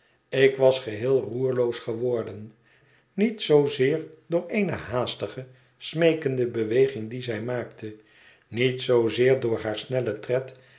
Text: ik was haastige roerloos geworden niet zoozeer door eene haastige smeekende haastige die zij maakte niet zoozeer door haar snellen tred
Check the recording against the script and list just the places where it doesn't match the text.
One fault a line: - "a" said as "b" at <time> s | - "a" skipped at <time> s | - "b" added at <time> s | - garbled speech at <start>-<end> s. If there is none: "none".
- "haastige" said as "geheel" at 0.8 s
- "haastige" said as "beweging" at 6.5 s